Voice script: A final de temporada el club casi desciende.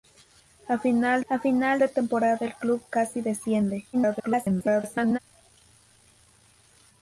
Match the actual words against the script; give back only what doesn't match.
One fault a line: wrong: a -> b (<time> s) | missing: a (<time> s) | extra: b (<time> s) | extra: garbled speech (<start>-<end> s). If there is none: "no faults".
extra: a final (1.3 s)
extra: garbled speech (3.9-5.2 s)